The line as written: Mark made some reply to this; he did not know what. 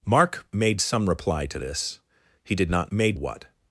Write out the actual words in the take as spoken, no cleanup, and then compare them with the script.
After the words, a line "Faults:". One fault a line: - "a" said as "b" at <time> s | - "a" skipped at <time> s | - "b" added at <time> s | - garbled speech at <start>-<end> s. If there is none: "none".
Mark made some reply to this; he did not made what.
Faults:
- "know" said as "made" at 2.9 s